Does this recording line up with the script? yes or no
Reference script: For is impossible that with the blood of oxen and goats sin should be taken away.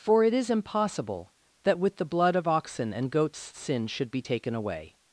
no